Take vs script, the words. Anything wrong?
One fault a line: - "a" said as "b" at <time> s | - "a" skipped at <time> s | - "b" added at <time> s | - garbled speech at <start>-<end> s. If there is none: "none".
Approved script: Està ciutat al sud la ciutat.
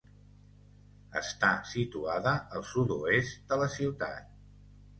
- "ciutat" said as "situada" at 1.7 s
- "oest de" added at 3.0 s